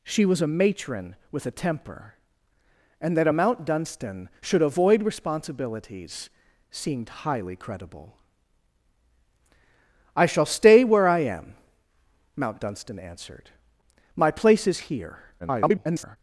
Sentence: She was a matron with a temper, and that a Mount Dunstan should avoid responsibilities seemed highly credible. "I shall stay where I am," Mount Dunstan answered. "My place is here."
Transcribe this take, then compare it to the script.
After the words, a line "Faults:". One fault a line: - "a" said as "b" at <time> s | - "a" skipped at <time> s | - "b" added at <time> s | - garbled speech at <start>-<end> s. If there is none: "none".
She was a matron with a temper, and that a Mount Dunstan should avoid responsibilities seemed highly credible. "I shall stay where I am," Mount Dunstan answered. "My place is here." [garbled]
Faults:
- garbled speech at 15.4-16.2 s